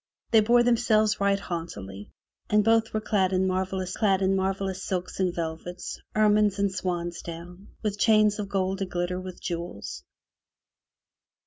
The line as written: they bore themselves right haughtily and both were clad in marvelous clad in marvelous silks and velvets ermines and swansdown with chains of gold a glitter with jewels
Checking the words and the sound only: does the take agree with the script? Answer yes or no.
yes